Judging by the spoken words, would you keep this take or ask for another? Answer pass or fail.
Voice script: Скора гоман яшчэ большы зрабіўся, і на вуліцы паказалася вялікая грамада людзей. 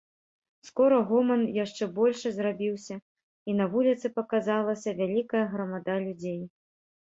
pass